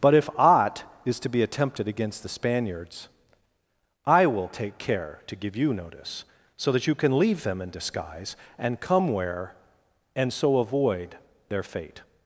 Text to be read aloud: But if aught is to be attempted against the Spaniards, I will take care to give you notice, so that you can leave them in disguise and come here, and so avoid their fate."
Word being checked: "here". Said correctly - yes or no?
no